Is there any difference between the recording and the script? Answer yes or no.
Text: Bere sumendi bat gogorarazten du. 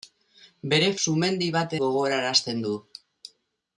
no